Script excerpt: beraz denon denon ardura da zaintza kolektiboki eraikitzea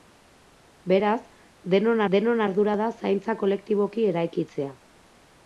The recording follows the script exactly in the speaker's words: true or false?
true